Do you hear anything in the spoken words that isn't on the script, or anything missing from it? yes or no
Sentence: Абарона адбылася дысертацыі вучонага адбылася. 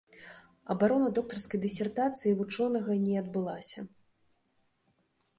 yes